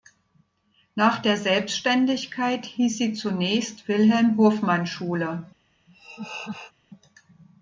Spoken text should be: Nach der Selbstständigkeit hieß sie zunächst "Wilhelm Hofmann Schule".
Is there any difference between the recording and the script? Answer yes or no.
no